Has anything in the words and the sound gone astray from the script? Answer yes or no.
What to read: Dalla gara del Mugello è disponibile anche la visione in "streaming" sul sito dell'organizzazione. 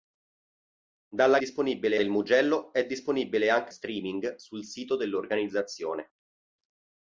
yes